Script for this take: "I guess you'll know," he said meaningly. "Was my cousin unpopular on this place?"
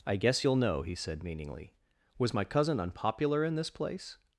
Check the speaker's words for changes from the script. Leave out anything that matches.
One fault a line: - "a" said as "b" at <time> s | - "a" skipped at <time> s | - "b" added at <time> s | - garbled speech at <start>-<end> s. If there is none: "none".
- "on" said as "in" at 3.4 s